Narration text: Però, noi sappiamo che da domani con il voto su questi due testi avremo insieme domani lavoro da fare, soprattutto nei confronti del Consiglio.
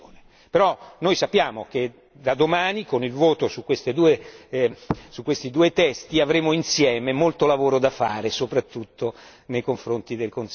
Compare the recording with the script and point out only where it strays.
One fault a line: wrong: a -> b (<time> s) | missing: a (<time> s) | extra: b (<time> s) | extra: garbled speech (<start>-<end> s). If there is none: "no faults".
wrong: domani -> molto (7.1 s)